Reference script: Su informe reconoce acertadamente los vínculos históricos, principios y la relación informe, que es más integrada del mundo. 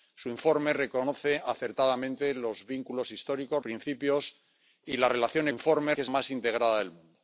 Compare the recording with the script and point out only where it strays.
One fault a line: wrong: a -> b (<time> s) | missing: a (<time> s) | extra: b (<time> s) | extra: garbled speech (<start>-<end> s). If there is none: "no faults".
no faults